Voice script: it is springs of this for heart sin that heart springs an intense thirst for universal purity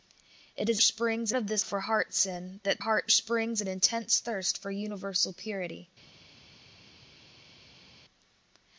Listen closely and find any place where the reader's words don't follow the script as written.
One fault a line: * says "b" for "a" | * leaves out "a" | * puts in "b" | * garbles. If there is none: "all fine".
all fine